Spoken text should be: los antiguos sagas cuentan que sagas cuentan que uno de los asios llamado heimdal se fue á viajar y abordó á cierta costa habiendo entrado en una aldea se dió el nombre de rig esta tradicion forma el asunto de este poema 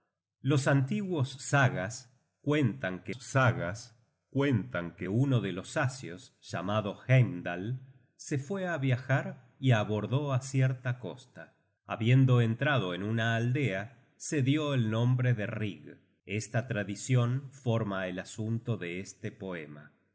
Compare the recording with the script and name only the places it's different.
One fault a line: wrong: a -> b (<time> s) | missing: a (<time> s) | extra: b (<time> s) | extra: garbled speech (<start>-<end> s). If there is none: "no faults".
no faults